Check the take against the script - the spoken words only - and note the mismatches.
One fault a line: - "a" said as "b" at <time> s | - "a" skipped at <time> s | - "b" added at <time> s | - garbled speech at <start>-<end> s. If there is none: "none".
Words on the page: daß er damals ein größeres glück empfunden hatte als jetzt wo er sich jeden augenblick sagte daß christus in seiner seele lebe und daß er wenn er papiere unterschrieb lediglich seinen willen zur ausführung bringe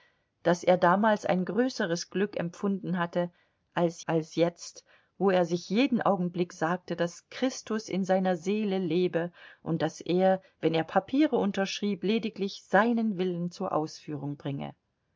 - "als" added at 4.1 s